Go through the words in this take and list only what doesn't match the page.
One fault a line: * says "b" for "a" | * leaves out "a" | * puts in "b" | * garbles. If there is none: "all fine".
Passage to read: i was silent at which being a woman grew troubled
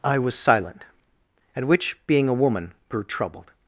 all fine